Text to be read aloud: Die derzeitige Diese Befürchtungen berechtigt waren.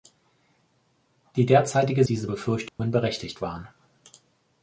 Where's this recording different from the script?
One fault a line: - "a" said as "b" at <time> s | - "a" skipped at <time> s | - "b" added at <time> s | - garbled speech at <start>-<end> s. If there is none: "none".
none